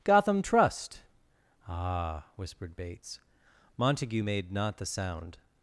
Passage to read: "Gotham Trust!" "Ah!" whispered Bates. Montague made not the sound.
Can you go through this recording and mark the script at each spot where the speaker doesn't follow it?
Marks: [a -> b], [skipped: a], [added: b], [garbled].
"Gotham Trust!" "Ah!" whispered Bates. Montague made not the sound.